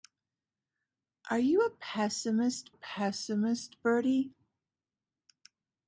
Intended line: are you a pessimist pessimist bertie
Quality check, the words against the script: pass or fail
pass